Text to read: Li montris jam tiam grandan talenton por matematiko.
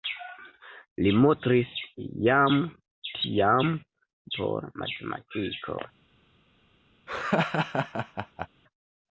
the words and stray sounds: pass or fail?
fail